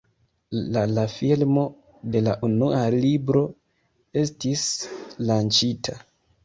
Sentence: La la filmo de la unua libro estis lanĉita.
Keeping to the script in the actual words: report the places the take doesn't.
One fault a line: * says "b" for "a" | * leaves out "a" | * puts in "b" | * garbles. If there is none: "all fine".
all fine